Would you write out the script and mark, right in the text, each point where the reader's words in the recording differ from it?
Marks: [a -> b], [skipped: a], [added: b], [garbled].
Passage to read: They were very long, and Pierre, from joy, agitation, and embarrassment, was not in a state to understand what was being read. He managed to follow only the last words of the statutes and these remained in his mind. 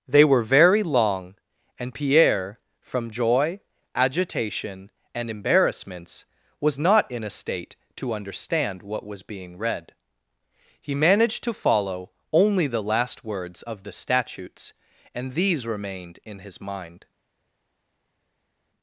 They were very long, and Pierre, from joy, agitation, and [embarrassment, -> embarrassments] was not in a state to understand what was being read. He managed to follow only the last words of the statutes and these remained in his mind.